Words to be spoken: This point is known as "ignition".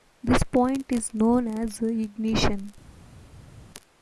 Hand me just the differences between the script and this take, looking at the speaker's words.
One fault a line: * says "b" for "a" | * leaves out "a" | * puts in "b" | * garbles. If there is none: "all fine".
all fine